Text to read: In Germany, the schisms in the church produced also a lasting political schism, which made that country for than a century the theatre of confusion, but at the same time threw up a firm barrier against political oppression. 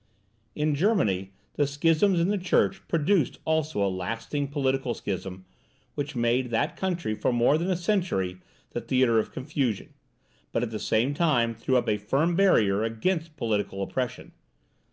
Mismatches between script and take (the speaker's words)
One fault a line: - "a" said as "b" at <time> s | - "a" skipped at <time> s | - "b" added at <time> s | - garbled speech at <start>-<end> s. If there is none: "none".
- "more" added at 7.3 s